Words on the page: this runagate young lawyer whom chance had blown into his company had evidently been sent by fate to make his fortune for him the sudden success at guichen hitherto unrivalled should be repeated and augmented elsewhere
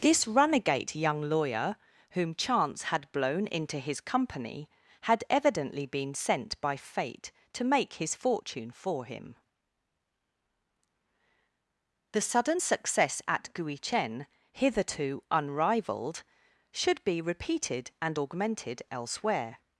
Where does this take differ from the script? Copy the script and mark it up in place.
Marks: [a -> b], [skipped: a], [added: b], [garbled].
this runagate young lawyer whom chance had blown into his company had evidently been sent by fate to make his fortune for him the sudden success at guichen hitherto unrivalled should be repeated and augmented elsewhere